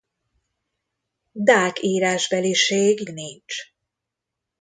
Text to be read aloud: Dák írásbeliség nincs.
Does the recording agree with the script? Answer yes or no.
yes